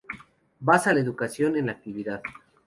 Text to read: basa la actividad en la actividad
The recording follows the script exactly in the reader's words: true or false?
false